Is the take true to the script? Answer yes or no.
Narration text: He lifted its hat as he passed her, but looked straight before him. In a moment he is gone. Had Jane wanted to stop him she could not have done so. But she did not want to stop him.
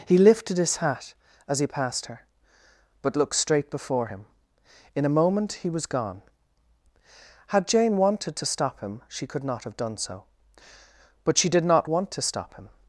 no